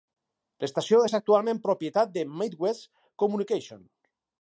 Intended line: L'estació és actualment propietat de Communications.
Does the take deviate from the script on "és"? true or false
false